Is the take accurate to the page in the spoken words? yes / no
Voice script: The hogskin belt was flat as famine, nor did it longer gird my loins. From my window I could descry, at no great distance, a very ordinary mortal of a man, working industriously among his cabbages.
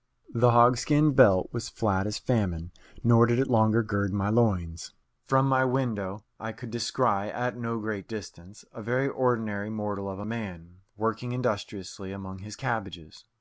yes